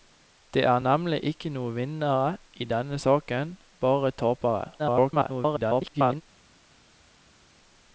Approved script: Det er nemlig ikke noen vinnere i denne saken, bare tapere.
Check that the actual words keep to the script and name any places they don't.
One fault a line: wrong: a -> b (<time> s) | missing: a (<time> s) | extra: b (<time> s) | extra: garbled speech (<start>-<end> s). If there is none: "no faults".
extra: garbled speech (4.8-6.2 s)